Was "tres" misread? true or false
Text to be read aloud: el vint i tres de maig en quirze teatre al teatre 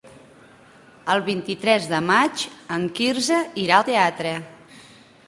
false